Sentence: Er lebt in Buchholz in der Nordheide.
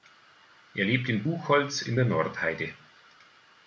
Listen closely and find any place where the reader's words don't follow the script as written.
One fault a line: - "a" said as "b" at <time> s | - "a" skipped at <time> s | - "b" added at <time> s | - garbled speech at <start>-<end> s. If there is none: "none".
none